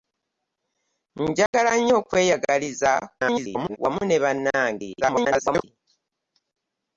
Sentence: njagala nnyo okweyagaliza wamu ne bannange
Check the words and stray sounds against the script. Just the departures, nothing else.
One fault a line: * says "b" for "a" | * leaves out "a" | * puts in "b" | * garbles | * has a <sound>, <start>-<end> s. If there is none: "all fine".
* has a dropout, 1.5-1.5 s
* garbles
* garbles